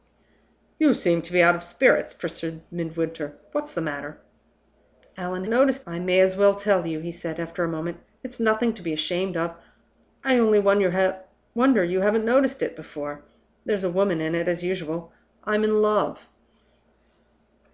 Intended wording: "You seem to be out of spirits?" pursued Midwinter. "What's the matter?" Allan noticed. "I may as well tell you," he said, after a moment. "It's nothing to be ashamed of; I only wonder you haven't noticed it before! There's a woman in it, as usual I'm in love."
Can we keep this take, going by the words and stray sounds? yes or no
yes